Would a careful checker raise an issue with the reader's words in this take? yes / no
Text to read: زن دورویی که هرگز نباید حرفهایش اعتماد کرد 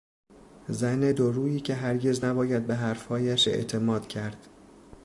yes